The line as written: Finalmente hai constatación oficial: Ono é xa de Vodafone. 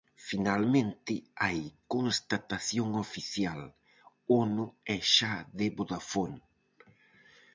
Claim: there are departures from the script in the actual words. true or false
false